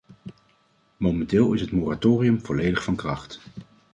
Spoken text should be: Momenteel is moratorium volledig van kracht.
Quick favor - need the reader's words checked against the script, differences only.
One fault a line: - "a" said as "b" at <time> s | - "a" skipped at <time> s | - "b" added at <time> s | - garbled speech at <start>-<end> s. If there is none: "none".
- "het" added at 1.6 s